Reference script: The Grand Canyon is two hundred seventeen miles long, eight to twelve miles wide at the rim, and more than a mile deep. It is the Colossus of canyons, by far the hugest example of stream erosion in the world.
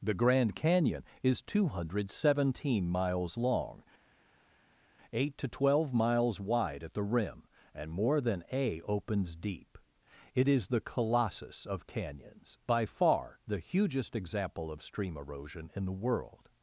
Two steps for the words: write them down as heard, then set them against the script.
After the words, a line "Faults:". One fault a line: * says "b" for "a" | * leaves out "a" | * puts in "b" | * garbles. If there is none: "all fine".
The Grand Canyon is two hundred seventeen miles long, eight to twelve miles wide at the rim, and more than a opens deep. It is the Colossus of canyons, by far the hugest example of stream erosion in the world.
Faults:
* says "opens" for "mile"